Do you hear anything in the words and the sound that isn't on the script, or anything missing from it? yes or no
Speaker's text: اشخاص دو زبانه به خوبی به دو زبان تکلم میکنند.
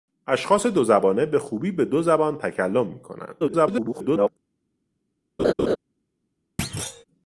yes